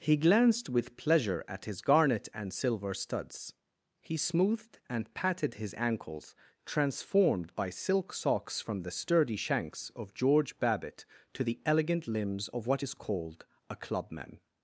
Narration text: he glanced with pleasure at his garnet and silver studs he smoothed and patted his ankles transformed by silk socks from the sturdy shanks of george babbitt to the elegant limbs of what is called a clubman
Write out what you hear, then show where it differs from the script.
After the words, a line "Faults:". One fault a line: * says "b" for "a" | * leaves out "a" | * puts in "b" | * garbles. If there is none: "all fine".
he glanced with pleasure at his garnet and silver studs he smoothed and patted his ankles transformed by silk socks from the sturdy shanks of george babbitt to the elegant limbs of what is called a clubman
Faults:
all fine